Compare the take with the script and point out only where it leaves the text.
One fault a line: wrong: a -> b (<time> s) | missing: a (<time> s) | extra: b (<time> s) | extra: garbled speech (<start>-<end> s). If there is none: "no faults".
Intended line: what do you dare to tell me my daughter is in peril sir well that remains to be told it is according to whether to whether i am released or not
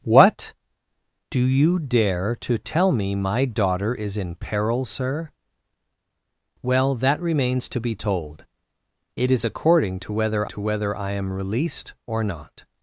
no faults